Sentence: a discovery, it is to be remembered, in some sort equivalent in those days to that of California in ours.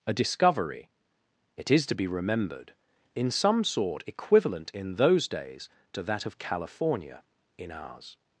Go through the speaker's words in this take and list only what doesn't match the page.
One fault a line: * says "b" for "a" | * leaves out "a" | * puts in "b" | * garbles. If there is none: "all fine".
all fine